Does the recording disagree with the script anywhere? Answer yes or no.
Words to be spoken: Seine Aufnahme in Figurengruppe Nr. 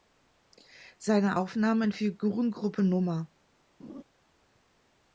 no